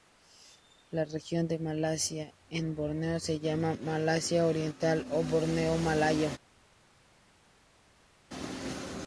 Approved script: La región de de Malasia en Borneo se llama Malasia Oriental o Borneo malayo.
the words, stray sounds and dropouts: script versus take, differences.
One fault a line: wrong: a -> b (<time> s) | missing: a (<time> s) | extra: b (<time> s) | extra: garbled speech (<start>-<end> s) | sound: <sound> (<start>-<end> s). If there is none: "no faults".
missing: de (1.6 s)